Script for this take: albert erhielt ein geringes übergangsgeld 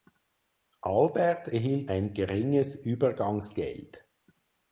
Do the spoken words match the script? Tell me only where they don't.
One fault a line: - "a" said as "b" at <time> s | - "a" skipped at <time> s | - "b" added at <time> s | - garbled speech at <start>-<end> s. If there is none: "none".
none